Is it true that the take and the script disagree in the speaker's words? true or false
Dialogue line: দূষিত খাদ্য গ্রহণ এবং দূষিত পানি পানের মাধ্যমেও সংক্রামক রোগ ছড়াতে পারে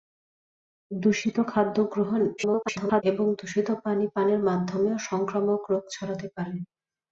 true